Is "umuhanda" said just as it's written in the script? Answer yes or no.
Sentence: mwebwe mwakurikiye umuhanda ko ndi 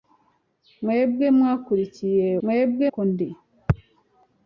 no